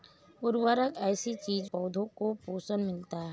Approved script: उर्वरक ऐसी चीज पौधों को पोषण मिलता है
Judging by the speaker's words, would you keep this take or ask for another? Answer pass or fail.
pass